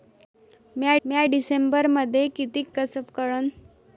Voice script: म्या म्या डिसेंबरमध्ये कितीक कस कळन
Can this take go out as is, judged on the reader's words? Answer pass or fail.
pass